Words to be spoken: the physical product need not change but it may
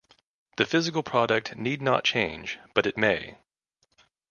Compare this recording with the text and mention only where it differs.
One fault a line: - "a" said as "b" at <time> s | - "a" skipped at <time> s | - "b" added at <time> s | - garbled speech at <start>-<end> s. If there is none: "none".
none